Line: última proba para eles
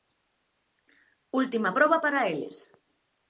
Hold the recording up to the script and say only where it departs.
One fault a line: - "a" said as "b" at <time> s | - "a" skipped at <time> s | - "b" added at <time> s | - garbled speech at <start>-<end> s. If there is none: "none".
none